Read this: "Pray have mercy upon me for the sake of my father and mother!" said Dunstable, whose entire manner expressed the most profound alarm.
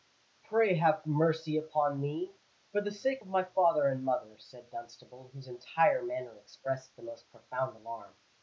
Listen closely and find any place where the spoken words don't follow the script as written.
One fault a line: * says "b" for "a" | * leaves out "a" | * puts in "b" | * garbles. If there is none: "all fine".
all fine